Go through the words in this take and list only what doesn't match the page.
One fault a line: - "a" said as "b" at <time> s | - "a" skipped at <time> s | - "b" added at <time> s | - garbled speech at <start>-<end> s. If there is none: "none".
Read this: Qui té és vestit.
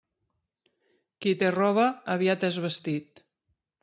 - "roba aviat" added at 1.5 s